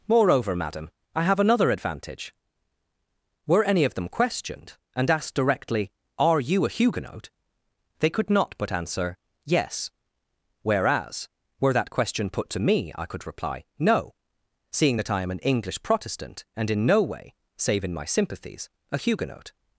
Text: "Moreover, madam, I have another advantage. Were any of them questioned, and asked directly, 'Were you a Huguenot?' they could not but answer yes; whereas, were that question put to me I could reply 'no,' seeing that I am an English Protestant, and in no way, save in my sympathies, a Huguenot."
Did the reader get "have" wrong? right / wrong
right